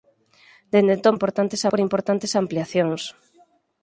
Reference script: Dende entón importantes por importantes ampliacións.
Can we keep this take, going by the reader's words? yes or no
yes